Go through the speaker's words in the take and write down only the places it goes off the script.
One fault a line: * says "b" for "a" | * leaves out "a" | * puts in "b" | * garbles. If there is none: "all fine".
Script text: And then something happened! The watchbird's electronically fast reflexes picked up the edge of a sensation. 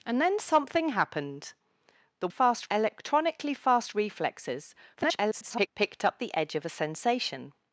* says "fast" for "watchbird's"
* garbles